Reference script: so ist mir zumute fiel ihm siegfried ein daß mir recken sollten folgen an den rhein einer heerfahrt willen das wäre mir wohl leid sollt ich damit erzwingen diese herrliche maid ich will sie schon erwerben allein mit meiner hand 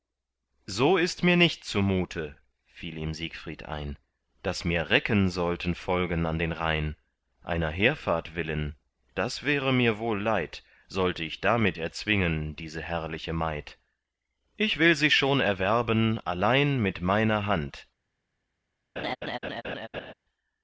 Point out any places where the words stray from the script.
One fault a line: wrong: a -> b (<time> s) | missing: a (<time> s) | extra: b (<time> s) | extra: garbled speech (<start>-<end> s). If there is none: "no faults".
extra: nicht (1.4 s)